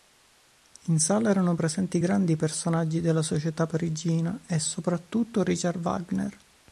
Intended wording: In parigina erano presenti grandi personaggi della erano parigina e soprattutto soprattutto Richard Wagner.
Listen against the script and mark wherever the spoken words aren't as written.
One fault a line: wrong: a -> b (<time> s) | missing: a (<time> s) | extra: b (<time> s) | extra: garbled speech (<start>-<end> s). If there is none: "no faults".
wrong: parigina -> sala (1.0 s)
wrong: erano -> società (3.2 s)
missing: soprattutto (5.4 s)